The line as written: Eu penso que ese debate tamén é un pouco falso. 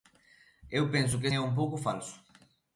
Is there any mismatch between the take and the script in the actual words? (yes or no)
yes